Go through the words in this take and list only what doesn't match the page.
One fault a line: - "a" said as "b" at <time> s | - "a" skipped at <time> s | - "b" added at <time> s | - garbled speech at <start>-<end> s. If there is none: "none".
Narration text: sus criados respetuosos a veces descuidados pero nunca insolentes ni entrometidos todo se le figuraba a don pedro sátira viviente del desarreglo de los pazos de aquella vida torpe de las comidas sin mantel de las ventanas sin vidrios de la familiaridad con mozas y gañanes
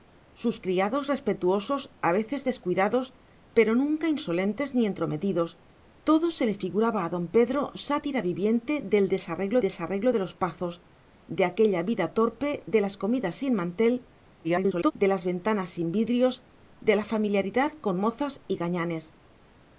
- "desarreglo" added at 9.6 s
- garbled speech at 14.4-14.9 s